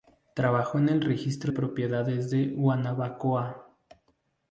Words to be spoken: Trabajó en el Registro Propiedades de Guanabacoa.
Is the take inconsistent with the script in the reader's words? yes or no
no